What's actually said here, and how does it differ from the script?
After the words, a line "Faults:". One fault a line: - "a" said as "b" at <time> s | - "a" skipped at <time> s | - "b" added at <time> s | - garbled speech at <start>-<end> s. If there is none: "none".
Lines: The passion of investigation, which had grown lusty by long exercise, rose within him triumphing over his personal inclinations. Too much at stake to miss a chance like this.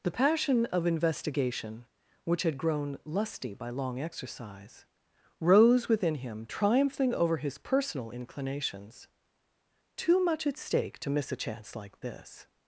The passion of investigation, which had grown lusty by long exercise, rose within him triumphing over his personal inclinations. Too much at stake to miss a chance like this.
Faults:
none